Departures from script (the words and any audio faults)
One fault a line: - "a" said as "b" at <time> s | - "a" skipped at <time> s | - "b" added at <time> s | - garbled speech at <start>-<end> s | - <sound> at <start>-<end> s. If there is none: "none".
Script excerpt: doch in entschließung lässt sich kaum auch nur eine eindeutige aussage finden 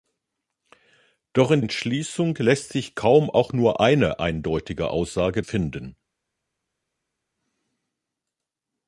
none